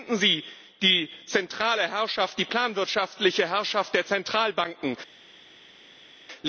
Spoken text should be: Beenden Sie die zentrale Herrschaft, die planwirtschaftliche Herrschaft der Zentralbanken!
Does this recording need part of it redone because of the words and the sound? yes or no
no